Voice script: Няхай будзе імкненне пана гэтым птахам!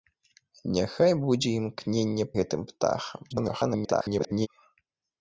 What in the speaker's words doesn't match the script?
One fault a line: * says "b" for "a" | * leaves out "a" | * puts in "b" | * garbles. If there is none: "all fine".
* leaves out "пана"
* garbles